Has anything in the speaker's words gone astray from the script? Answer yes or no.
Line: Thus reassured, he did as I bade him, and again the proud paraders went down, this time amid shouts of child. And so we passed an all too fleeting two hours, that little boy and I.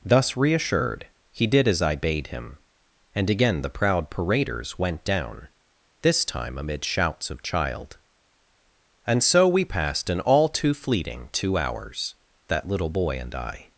no